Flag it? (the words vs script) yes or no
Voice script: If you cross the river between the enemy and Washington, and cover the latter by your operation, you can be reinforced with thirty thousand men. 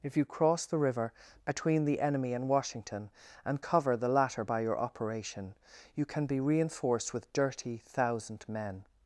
yes